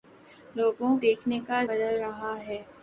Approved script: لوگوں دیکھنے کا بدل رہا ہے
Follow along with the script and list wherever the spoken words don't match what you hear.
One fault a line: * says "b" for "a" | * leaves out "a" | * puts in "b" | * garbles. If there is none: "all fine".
all fine